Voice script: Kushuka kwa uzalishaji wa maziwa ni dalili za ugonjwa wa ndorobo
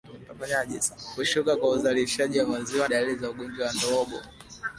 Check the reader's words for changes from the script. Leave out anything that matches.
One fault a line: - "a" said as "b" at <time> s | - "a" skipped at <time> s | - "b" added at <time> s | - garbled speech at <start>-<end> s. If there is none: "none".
- "ni" skipped at 2.9 s